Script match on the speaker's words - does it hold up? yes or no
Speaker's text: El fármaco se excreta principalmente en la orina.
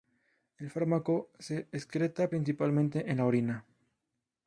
yes